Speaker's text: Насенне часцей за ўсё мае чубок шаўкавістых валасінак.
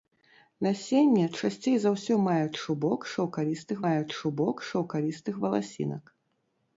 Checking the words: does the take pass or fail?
fail